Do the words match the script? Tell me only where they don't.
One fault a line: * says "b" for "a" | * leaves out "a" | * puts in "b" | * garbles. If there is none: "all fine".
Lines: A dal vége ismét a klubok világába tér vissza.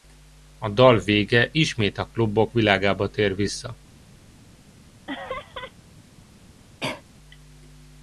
all fine